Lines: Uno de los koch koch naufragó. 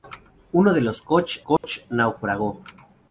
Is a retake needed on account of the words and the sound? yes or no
yes